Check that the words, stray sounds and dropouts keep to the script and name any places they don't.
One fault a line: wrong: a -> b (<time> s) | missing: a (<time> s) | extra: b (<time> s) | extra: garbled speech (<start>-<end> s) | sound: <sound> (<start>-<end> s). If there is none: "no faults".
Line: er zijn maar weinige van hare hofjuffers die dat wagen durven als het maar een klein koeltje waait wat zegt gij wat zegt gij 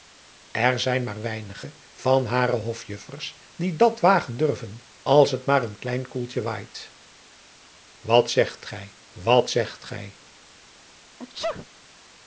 sound: sneeze (11.2-11.7 s)